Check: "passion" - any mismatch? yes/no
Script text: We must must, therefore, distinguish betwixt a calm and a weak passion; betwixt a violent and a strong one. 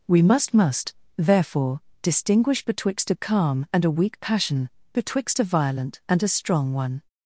no